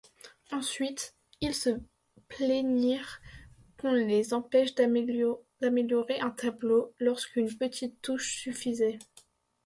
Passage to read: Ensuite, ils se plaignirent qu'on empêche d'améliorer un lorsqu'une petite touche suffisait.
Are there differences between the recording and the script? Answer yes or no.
yes